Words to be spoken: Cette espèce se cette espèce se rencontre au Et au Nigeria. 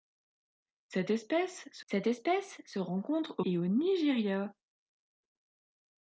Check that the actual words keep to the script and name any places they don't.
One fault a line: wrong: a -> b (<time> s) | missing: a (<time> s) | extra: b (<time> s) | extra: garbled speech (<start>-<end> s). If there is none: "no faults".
no faults